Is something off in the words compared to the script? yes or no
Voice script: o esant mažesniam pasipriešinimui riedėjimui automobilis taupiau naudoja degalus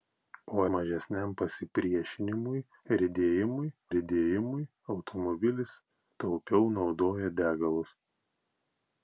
yes